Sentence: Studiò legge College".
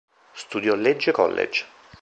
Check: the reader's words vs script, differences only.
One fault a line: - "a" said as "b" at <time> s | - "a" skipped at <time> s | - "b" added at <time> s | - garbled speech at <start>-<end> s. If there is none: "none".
none